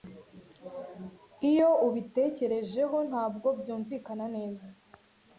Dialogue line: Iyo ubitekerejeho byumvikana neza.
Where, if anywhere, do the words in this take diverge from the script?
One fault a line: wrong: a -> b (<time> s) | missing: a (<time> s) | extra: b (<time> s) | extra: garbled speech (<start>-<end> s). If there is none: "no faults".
extra: ntabwo (3.1 s)